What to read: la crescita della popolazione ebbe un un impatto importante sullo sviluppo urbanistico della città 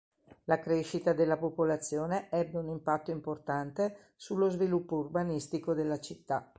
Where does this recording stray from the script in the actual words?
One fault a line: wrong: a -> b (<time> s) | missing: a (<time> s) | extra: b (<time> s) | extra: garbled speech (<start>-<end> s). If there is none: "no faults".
missing: un (2.7 s)